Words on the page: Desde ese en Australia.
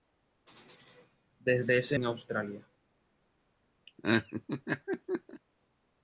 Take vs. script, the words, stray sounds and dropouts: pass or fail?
fail